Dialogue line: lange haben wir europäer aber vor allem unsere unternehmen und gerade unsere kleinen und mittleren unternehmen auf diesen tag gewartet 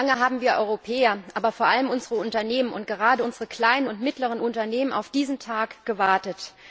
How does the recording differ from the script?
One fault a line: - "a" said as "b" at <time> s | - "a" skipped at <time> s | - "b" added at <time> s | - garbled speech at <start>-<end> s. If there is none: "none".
none